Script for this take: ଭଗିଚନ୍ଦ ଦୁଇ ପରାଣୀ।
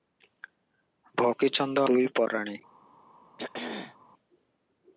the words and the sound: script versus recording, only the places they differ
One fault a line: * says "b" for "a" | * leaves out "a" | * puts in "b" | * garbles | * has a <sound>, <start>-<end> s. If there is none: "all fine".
* has a throat clearing, 3.4-4.0 s